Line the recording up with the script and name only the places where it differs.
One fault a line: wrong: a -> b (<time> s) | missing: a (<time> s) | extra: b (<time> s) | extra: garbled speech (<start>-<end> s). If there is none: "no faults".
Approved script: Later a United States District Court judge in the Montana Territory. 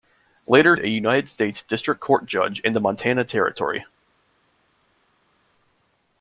no faults